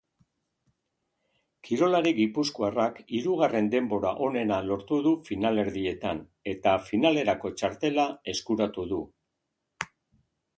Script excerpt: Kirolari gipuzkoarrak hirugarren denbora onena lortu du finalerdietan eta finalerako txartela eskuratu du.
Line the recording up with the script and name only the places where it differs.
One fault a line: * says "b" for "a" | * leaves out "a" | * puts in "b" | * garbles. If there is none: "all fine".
all fine